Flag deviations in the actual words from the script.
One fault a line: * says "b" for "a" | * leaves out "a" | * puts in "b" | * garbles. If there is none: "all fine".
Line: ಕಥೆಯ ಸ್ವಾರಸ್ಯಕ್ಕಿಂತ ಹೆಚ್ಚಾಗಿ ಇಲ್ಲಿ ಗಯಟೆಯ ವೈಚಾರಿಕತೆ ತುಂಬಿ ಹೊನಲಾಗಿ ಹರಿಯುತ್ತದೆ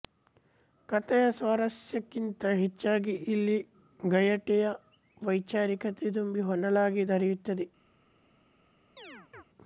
all fine